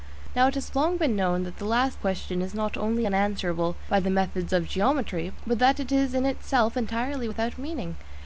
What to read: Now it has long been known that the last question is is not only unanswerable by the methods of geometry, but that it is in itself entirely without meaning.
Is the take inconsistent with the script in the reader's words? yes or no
yes